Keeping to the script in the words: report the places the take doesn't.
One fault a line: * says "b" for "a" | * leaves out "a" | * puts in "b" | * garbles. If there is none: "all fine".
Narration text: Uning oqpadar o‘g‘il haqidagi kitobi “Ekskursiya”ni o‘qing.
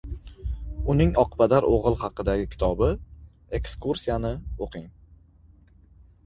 all fine